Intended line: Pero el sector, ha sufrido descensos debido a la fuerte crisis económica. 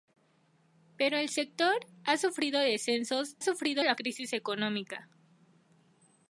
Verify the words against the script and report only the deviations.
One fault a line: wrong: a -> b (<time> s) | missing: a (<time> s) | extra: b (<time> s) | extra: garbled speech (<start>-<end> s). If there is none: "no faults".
wrong: debido -> sufrido (3.4 s)
missing: fuerte (3.9 s)